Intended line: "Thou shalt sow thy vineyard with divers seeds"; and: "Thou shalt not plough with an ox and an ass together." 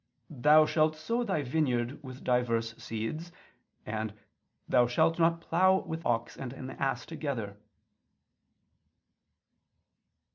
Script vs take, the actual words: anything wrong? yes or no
yes